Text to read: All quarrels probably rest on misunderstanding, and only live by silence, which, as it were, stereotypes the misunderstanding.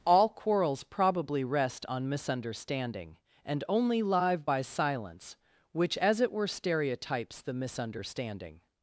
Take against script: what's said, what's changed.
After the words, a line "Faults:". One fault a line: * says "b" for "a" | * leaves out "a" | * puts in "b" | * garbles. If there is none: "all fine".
All quarrels probably rest on misunderstanding, and only live by silence, which, as it were, stereotypes the misunderstanding.
Faults:
all fine